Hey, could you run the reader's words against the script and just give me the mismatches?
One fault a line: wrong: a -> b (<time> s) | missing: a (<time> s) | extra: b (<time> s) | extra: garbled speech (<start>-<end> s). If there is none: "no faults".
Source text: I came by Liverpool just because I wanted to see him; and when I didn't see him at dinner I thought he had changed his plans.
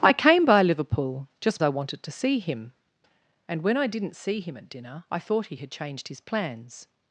missing: because (1.6 s)